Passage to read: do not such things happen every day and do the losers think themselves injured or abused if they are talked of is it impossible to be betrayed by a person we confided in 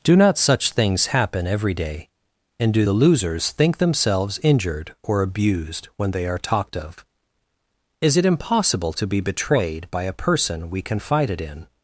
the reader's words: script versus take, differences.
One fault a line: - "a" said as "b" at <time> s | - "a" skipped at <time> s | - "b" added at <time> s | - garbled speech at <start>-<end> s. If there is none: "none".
- "if" said as "when" at 5.9 s